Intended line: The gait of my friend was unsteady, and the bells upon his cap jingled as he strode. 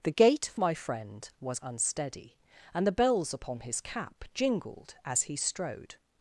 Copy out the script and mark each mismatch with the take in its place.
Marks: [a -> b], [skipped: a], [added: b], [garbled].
The gait of my friend was unsteady, and the bells upon his cap jingled as he strode.